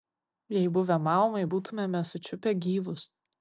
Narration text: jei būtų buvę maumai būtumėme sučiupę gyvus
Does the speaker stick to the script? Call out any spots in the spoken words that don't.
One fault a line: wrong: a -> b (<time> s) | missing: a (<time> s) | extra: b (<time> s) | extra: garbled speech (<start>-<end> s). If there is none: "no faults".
missing: būtų (0.7 s)